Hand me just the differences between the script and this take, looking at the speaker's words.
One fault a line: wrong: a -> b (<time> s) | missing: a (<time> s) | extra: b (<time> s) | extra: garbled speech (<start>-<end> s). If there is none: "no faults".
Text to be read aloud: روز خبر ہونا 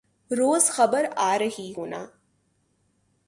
extra: آرہی (1.2 s)